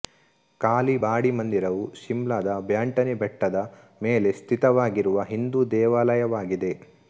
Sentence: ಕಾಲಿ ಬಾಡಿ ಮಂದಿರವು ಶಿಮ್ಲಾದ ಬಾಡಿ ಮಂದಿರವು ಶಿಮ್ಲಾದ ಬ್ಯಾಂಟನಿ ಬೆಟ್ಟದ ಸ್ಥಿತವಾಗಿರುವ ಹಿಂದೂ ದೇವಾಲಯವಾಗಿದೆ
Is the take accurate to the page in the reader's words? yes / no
no